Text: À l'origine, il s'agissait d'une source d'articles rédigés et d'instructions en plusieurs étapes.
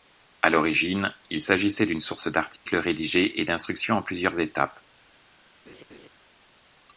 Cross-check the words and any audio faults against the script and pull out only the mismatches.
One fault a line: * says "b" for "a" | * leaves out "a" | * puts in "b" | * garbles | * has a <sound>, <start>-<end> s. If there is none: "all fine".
* has a dropout, 2.6-2.7 s
* has a laugh, 5.7-6.1 s